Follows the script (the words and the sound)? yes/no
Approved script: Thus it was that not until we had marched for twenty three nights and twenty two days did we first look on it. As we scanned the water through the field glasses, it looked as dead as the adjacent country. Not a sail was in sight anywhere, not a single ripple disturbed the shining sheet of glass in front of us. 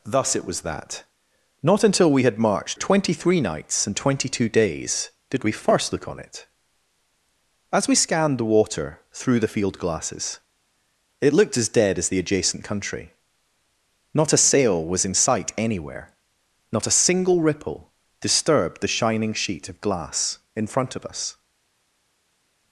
no